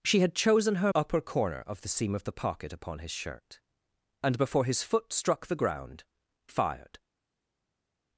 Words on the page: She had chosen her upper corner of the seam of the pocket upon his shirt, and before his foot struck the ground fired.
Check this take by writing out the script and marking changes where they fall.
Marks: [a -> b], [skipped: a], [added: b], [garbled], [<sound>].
She had chosen her upper corner of the seam of the pocket upon his shirt, and before his foot struck the ground fired.